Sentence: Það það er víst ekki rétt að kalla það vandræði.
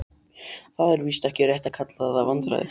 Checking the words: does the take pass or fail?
fail